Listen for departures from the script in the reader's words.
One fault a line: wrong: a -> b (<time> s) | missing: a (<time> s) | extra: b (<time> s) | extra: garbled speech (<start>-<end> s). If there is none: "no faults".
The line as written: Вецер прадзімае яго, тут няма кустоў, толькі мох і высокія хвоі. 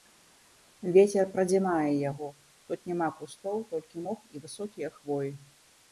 no faults